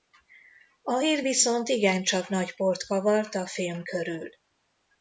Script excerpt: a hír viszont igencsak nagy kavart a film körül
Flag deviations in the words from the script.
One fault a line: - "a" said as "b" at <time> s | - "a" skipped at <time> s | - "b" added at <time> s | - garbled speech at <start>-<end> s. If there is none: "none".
- "port" added at 2.6 s